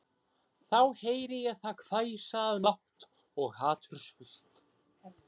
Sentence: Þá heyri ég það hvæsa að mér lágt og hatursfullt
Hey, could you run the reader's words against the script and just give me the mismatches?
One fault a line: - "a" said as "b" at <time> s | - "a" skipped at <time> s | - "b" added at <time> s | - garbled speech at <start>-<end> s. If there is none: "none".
- "mér" skipped at 2.6 s